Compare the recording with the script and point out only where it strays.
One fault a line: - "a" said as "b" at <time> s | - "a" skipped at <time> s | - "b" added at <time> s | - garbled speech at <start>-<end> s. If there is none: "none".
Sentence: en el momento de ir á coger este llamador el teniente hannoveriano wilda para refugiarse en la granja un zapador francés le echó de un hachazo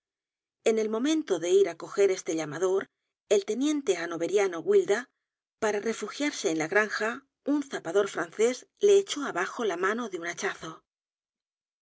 - "abajo la mano" added at 9.2 s